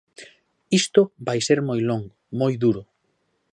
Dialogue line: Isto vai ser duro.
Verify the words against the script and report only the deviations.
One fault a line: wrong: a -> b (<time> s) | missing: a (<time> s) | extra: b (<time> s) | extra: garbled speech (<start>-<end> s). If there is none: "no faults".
extra: moi longo moi (1.7 s)